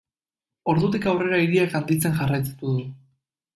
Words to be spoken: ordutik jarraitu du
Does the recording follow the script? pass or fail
fail